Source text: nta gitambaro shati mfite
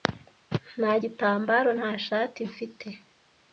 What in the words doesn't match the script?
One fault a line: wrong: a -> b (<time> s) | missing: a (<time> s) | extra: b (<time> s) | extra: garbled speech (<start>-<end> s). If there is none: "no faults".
extra: nta (1.8 s)